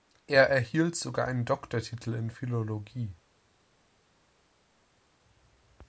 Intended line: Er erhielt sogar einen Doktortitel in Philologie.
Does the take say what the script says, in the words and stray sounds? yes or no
yes